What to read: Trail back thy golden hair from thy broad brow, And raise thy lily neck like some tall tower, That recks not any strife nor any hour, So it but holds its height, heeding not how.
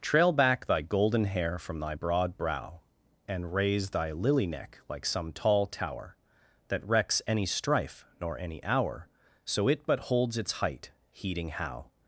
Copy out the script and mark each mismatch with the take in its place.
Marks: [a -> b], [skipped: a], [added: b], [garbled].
Trail back thy golden hair from thy broad brow, And raise thy lily neck like some tall tower, That recks [skipped: not] any strife nor any hour, So it but holds its height, heeding [skipped: not] how.